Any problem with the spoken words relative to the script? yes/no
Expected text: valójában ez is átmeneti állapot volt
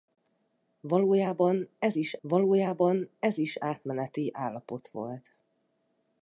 yes